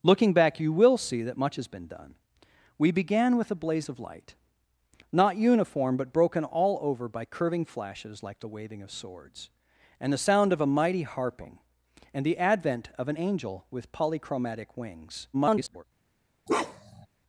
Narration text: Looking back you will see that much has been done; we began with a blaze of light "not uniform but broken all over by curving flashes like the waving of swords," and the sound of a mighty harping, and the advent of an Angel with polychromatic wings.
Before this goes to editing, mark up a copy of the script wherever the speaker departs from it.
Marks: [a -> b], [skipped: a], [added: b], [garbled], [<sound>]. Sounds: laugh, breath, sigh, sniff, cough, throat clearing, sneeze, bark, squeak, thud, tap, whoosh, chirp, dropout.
Looking back you will see that much has been done; we began with a blaze of light "not uniform but broken all over by curving flashes like the waving of swords," and the sound of a mighty harping, and the advent of an Angel with polychromatic wings. [garbled] [bark]